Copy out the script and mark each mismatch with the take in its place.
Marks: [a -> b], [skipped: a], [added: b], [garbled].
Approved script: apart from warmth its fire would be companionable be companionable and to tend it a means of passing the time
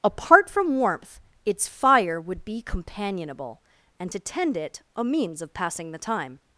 apart from warmth its fire would be companionable [skipped: be companionable] and to tend it a means of passing the time